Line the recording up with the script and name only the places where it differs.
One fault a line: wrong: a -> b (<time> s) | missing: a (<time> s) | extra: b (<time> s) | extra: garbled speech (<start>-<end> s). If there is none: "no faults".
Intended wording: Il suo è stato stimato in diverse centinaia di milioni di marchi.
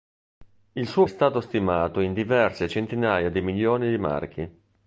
no faults